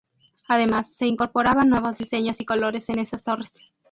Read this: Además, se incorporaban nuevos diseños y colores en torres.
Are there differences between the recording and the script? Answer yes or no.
yes